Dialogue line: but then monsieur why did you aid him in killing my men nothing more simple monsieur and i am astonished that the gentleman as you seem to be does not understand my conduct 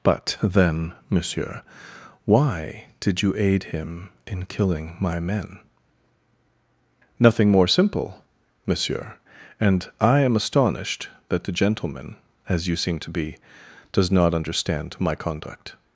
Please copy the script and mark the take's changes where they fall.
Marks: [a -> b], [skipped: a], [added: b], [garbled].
but then monsieur why did you aid him in killing my men nothing more simple monsieur and i am astonished that the gentleman as you seem to be does not understand my conduct